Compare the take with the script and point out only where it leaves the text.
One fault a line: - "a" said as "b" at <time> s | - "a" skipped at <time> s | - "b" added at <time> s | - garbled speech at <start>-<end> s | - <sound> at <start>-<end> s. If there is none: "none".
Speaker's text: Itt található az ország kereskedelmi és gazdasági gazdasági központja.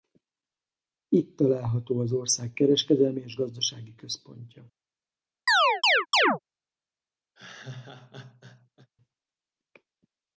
- "gazdasági" skipped at 3.9 s
- chirp at 5.5-6.4 s
- laugh at 7.3-8.9 s